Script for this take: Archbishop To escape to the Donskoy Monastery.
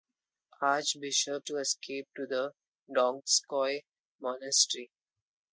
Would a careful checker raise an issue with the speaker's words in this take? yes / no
no